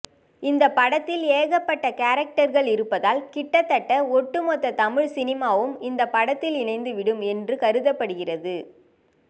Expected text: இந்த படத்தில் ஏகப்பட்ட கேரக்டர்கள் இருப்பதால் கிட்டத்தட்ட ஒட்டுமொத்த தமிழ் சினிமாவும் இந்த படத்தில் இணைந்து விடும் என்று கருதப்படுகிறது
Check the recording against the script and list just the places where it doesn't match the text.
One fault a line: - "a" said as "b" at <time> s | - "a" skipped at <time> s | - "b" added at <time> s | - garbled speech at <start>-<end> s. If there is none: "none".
none